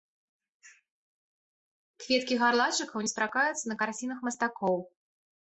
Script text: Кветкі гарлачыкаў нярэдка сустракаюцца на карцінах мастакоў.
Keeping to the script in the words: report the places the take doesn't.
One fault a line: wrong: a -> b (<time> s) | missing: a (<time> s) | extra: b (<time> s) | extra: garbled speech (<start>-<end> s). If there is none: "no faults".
missing: нярэдка (3.1 s)